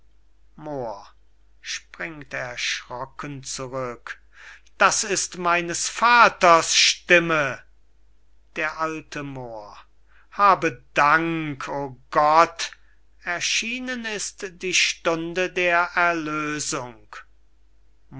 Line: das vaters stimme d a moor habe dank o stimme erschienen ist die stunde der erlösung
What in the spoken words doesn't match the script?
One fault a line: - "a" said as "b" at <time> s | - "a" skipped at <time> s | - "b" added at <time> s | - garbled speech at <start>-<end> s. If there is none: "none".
- "ist meines" added at 5.0 s
- "stimme" said as "gott" at 12.1 s